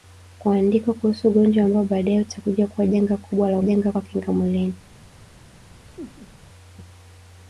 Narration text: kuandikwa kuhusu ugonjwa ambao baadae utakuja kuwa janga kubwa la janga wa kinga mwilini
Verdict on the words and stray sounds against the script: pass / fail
fail